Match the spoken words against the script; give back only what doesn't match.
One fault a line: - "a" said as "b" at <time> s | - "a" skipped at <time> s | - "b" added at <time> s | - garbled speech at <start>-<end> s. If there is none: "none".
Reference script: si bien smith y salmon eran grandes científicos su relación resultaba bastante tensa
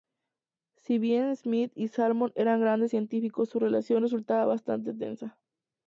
none